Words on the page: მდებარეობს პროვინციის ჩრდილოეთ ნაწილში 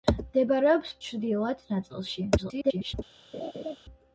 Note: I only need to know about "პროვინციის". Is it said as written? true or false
false